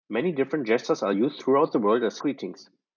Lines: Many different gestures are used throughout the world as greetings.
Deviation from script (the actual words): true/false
false